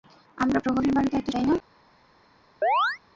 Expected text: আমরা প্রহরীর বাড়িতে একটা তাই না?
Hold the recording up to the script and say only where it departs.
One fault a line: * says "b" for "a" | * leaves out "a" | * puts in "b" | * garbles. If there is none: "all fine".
all fine